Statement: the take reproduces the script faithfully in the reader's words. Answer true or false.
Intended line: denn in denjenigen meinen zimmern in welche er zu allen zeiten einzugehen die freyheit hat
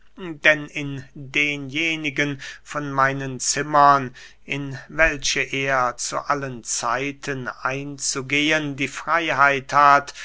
false